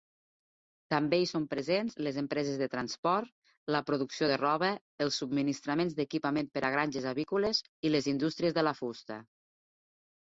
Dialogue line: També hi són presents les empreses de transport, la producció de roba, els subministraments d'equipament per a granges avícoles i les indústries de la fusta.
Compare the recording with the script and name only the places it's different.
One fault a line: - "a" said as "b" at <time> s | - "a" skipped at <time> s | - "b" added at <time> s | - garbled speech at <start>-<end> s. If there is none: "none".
none